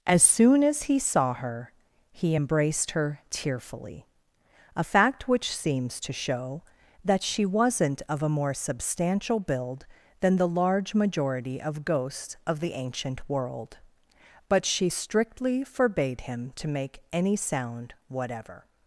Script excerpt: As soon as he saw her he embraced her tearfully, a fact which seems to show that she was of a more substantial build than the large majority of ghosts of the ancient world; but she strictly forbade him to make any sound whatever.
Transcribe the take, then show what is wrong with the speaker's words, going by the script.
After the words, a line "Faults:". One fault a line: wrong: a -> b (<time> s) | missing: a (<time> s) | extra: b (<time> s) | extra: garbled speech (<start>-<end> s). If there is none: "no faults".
As soon as he saw her he embraced her tearfully, a fact which seems to show that she wasn't of a more substantial build than the large majority of ghosts of the ancient world; but she strictly forbade him to make any sound whatever.
Faults:
wrong: was -> wasn't (7.5 s)